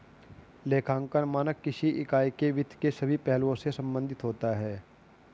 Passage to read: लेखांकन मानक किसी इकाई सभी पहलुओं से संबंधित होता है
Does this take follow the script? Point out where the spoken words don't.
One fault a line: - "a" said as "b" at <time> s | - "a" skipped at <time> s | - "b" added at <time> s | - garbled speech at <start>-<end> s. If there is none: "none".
- "के वित्त के" added at 2.4 s